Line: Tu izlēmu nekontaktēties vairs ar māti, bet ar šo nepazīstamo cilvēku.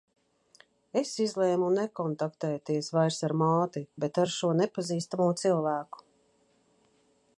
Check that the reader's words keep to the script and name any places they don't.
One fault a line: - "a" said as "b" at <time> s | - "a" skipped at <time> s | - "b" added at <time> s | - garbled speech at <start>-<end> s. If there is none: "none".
- "Tu" said as "Es" at 1.0 s